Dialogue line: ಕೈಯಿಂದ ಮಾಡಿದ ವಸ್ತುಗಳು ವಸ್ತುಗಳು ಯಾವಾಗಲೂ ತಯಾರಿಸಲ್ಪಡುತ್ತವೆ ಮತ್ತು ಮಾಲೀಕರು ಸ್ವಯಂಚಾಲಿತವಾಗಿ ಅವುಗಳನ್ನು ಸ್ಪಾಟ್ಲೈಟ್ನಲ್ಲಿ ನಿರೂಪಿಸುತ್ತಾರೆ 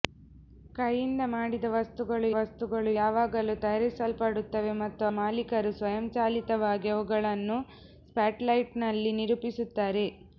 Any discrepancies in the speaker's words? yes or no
no